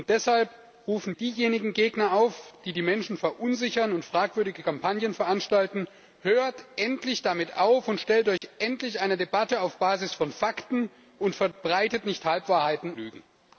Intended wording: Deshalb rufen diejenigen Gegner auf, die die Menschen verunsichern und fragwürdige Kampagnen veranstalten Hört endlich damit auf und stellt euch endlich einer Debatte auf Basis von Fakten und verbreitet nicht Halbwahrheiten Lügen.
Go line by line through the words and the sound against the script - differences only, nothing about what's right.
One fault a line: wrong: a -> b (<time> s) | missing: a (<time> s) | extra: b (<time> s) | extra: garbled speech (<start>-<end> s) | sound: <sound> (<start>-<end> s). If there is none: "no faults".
sound: dropout (8.4-8.4 s)